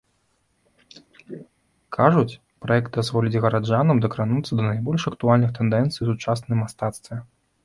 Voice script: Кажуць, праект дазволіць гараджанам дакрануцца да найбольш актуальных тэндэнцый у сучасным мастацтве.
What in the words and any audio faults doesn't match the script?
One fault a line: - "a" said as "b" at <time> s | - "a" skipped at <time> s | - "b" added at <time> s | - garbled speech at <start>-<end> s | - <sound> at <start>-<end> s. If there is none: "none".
- throat clearing at 0.7-1.5 s